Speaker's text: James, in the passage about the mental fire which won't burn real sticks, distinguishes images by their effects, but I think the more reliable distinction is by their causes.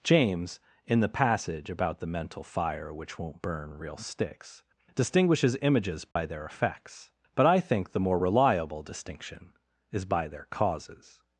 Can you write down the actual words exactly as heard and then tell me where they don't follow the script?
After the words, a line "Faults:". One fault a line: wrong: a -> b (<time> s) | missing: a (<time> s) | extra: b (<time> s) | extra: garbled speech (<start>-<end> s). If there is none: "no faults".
James, in the passage about the mental fire which won't burn real sticks, distinguishes images by their effects, but I think the more reliable distinction is by their causes.
Faults:
no faults